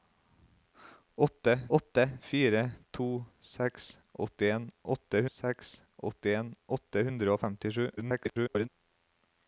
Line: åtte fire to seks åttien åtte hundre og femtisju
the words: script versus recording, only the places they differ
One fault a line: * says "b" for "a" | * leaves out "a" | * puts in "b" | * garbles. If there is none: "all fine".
* puts in "åtte"
* puts in "seks åttien åtte"
* garbles